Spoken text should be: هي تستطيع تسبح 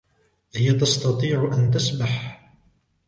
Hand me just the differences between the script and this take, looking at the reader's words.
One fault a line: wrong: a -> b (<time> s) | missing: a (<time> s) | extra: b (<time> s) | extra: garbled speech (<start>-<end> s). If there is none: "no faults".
extra: أن (1.5 s)